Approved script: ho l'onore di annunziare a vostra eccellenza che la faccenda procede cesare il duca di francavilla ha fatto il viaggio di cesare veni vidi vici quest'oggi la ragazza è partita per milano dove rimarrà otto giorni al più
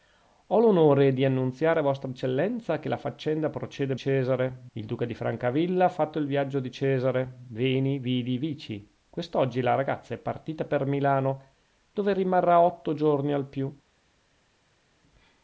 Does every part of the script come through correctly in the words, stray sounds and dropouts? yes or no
yes